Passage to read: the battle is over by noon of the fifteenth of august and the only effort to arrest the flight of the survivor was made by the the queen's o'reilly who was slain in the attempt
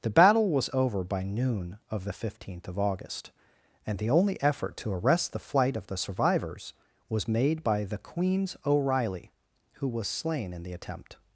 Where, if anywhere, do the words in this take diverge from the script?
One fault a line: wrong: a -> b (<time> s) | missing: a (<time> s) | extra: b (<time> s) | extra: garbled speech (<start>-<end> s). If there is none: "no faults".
wrong: is -> was (0.5 s)
wrong: survivor -> survivors (6.0 s)
missing: the (8.0 s)